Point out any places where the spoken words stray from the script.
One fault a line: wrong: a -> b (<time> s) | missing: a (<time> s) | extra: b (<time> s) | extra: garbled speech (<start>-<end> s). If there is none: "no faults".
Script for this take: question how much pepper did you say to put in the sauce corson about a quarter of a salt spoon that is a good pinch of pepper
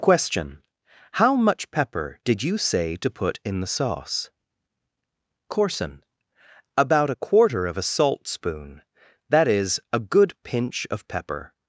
no faults